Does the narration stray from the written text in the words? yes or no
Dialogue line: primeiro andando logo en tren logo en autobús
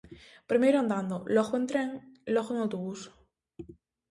no